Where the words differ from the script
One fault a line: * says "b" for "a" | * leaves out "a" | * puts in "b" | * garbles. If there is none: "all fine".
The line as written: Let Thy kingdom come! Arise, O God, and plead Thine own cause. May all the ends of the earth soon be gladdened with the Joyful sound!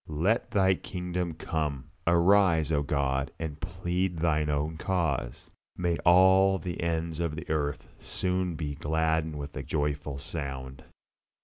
all fine